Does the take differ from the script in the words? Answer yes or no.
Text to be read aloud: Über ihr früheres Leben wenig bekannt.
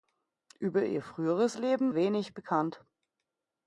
no